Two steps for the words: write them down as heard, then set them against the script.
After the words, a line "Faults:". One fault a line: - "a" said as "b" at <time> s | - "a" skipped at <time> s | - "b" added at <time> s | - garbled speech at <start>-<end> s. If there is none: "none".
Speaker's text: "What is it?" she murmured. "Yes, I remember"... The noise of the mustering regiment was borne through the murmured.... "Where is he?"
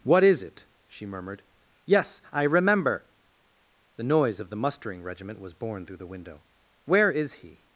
"What is it?" she murmured. "Yes, I remember"... The noise of the mustering regiment was borne through the window.... "Where is he?"
Faults:
- "murmured" said as "window" at 6.1 s